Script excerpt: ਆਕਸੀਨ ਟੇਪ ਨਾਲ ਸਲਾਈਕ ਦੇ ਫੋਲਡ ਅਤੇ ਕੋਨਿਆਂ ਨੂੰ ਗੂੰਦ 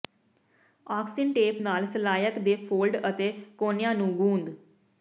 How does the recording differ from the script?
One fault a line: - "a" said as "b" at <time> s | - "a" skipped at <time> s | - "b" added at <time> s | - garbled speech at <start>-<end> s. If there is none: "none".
none